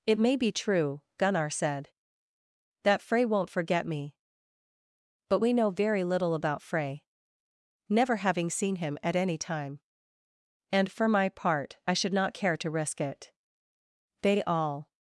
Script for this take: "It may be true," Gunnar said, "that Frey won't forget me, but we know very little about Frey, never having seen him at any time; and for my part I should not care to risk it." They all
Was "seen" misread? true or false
false